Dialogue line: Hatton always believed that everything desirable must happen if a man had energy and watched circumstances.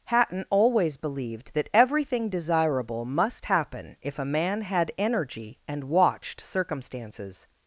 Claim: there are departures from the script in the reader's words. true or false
false